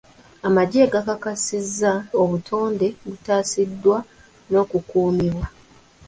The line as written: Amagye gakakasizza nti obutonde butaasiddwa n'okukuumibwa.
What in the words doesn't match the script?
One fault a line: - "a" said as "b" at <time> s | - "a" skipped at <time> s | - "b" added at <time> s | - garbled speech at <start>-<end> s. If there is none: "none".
- "nti" skipped at 1.9 s